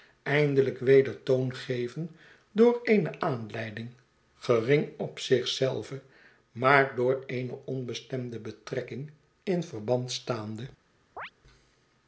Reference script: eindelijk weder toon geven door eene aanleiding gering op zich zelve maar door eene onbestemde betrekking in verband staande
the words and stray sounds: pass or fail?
fail